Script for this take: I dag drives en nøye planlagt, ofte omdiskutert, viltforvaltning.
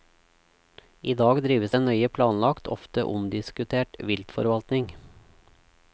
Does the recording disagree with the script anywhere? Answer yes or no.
no